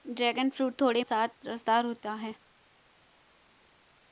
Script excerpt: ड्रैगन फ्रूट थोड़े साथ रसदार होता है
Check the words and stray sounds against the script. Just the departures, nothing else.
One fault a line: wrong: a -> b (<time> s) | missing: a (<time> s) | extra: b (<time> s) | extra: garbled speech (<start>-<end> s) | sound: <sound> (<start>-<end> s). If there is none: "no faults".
no faults